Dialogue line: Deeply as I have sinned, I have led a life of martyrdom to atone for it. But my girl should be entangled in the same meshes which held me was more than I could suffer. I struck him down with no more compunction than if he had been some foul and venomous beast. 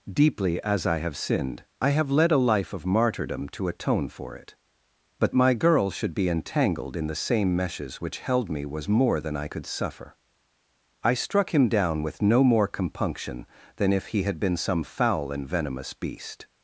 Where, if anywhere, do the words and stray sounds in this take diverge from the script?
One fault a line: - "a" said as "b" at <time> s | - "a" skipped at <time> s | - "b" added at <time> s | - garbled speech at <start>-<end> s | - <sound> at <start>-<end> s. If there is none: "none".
none